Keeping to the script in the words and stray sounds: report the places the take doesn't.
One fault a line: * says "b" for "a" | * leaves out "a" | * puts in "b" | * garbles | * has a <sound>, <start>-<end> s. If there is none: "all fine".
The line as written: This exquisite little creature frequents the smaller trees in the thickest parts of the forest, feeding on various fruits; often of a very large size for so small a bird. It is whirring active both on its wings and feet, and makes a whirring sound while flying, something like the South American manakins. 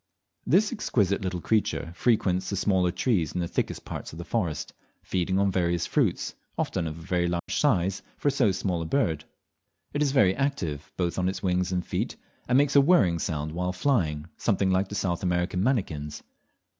* has a dropout, 7.4-7.5 s
* says "very" for "whirring"